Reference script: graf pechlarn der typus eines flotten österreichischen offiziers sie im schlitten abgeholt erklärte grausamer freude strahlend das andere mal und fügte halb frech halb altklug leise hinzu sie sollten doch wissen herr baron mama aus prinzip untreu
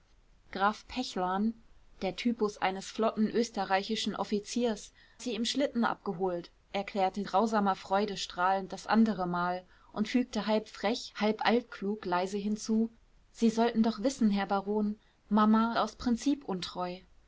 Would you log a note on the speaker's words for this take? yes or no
no